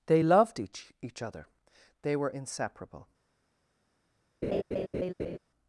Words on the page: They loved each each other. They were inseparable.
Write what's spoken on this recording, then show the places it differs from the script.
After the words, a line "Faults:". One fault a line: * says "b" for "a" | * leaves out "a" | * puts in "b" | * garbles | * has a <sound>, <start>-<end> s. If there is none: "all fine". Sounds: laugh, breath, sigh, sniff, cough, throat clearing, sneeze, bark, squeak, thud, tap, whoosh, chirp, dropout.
They loved each each other. They were inseparable.
Faults:
* has a laugh, 4.4-5.4 s